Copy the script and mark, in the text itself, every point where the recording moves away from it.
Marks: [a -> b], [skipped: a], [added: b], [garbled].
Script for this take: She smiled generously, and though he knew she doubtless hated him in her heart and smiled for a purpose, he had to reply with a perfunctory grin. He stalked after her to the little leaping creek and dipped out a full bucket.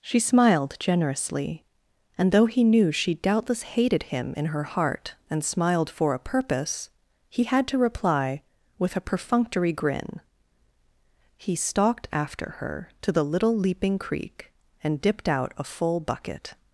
She smiled generously, and though he knew she doubtless hated him in her heart and smiled for a purpose, he had to reply with a perfunctory grin. He stalked after her to the little leaping creek and dipped out a full bucket.